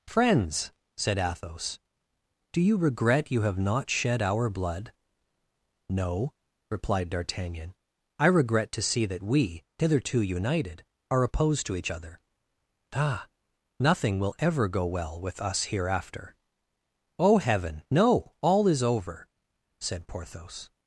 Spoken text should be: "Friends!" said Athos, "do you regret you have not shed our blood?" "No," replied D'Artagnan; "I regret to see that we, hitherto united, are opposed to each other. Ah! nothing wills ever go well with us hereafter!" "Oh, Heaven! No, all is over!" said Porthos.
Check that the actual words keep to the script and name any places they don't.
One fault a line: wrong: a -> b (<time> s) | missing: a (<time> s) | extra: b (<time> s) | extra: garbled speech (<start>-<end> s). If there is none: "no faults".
wrong: wills -> will (14.2 s)